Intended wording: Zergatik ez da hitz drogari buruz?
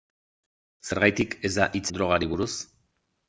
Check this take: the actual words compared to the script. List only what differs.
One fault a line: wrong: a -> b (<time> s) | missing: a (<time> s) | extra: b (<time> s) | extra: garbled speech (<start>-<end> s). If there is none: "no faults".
no faults